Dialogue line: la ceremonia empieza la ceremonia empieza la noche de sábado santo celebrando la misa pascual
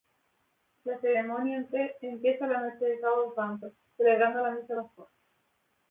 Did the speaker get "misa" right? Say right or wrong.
right